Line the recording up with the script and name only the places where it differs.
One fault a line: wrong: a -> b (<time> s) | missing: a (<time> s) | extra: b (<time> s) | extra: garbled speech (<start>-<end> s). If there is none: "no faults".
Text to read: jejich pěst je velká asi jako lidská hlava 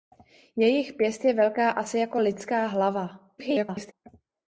extra: garbled speech (3.4-3.9 s)